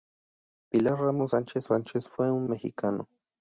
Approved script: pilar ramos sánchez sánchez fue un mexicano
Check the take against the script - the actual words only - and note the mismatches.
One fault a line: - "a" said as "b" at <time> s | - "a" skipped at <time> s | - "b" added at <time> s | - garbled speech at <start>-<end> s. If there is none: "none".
none